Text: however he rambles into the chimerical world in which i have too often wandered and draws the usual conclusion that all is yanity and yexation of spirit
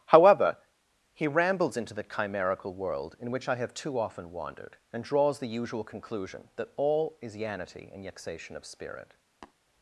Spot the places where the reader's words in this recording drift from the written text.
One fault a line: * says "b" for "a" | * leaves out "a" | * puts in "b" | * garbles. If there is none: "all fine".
all fine